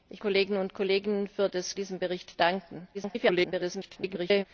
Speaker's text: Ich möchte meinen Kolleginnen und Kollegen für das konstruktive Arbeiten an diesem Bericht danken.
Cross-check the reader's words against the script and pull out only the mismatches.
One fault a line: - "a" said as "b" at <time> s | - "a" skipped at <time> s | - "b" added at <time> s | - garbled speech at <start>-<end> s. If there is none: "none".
- "möchte meinen" skipped at 0.2 s
- "konstruktive Arbeiten an" skipped at 1.8 s
- garbled speech at 2.9-4.4 s